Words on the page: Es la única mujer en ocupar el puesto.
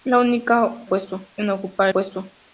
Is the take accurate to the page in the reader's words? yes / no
no